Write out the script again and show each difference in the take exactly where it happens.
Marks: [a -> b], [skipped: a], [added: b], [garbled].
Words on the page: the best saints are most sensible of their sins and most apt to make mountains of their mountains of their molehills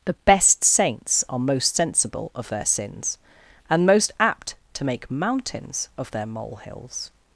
the best saints are most sensible of their sins and most apt to make mountains of their [skipped: mountains of their] molehills